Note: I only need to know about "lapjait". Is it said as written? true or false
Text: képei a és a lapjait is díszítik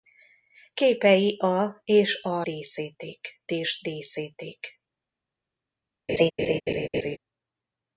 false